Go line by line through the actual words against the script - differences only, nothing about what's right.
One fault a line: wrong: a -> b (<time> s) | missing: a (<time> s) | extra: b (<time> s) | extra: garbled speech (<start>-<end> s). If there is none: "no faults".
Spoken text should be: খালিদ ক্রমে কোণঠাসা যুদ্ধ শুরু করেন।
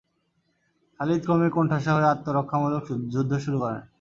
extra: হয়ে আত্মরক্ষামূলক (1.9 s)